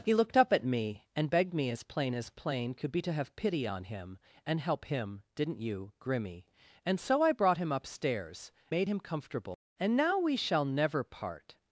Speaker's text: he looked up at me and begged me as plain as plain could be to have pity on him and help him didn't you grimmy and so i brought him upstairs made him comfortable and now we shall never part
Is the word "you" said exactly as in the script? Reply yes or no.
yes